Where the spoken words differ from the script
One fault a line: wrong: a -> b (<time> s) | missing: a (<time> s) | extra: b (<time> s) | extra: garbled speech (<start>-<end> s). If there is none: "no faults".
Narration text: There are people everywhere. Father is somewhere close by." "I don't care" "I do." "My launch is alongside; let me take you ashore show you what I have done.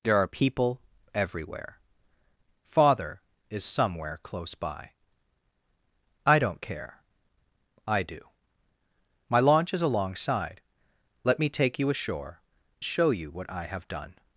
no faults